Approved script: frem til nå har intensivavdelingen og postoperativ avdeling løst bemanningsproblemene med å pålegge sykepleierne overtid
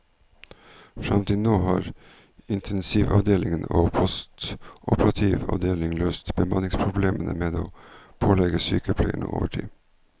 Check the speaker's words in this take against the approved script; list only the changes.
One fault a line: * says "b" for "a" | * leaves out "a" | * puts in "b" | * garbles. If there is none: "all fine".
all fine